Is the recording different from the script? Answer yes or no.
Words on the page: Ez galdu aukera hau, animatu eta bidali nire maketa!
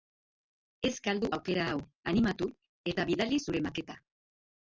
yes